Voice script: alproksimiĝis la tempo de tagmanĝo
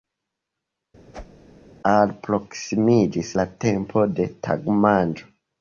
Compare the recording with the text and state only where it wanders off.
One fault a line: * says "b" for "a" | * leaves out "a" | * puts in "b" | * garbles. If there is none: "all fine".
all fine